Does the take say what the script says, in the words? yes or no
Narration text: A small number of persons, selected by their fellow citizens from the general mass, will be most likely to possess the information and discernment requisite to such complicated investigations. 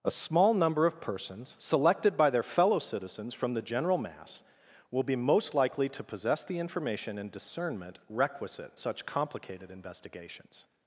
no